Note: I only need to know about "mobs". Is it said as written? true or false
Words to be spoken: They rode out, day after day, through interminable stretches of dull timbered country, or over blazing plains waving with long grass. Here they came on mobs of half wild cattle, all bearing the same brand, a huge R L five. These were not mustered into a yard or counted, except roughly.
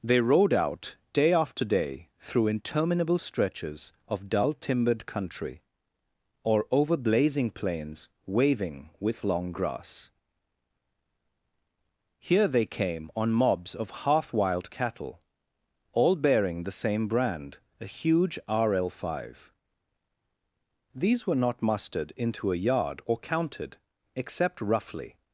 true